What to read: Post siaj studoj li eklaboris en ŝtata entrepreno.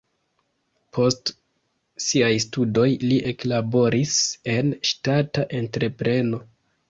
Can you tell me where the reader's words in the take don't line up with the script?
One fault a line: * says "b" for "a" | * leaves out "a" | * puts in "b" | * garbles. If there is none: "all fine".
all fine